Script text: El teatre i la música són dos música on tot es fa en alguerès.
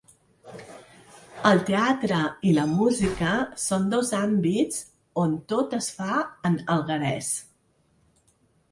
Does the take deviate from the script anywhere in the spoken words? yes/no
yes